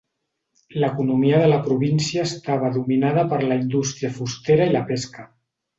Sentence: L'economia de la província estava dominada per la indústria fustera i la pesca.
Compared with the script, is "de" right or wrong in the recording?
right